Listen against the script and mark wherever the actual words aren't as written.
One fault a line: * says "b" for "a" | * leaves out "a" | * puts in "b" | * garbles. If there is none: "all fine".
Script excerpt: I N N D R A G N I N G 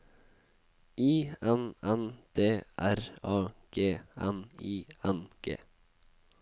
all fine